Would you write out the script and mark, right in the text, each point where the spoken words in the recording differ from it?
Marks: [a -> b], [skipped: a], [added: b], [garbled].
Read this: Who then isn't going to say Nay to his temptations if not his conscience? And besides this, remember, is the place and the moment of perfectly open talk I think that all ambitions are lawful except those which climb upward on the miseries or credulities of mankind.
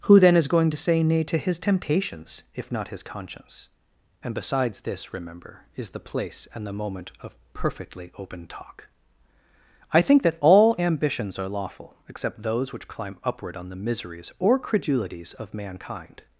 Who then [isn't -> is] going to say Nay to his temptations if not his conscience? And besides this, remember, is the place and the moment of perfectly open talk I think that all ambitions are lawful except those which climb upward on the miseries or credulities of mankind.